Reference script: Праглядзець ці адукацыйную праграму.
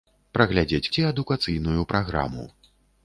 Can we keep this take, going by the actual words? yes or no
yes